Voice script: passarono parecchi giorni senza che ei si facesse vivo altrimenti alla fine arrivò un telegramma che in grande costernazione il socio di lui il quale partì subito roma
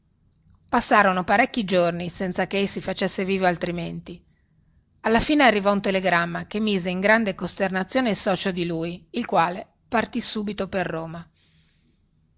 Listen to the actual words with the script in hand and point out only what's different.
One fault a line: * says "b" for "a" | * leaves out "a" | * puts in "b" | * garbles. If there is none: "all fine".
* puts in "mise"
* puts in "per"